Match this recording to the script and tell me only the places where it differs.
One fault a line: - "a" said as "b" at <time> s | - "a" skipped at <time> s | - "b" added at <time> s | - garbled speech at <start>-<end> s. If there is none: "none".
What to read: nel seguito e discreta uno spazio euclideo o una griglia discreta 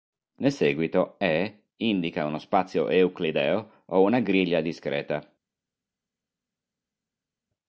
- "discreta" said as "indica" at 1.8 s